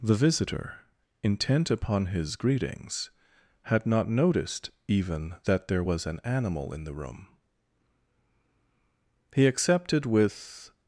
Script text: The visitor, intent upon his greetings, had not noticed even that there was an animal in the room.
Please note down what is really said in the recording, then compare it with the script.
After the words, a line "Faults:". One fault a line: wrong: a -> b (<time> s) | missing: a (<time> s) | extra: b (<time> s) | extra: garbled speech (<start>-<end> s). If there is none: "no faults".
The visitor, intent upon his greetings, had not noticed even that there was an animal in the room. He accepted with
Faults:
extra: He accepted with (9.3 s)